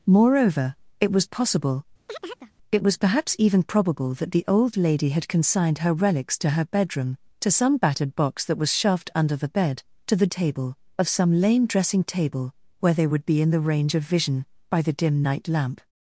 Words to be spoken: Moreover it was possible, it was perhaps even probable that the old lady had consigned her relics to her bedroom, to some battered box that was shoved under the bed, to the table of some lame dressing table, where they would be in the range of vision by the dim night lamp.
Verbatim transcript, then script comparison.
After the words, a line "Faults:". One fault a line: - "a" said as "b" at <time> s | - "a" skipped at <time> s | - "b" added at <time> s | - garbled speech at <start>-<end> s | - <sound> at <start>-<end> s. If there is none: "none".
Moreover it was possible, it was perhaps even probable that the old lady had consigned her relics to her bedroom, to some battered box that was shoved under the bed, to the table of some lame dressing table, where they would be in the range of vision by the dim night lamp.
Faults:
- chirp at 2.1-2.5 s